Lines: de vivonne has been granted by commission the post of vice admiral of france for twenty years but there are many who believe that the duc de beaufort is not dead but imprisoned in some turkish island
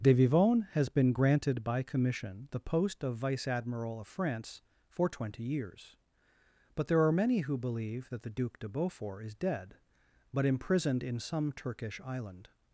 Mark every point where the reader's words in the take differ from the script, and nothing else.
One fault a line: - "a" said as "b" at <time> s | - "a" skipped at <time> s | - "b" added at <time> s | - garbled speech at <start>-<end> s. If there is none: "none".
- "not" skipped at 9.3 s